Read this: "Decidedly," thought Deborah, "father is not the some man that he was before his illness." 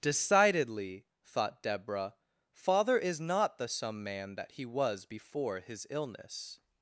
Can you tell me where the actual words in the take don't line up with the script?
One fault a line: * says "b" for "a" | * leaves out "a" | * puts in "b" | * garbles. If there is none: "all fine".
all fine